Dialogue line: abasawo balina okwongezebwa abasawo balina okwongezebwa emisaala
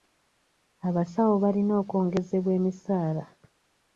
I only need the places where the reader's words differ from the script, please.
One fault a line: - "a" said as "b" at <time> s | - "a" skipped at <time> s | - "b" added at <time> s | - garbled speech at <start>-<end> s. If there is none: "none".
- "abasawo balina okwongezebwa" skipped at 2.5 s